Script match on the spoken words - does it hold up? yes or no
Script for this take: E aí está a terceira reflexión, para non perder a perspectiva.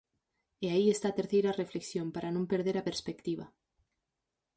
yes